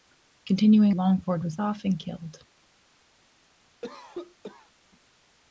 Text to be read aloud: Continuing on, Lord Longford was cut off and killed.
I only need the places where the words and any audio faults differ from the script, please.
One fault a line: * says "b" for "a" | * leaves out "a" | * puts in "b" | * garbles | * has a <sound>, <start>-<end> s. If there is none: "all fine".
* leaves out "on Lord"
* leaves out "cut"
* has a cough, 3.8-4.7 s